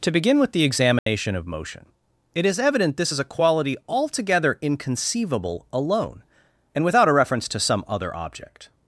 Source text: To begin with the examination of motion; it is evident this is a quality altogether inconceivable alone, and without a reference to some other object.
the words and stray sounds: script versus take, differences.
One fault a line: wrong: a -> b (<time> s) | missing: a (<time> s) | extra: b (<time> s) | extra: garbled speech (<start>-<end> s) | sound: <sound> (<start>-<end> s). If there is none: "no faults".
sound: dropout (1.0-1.1 s)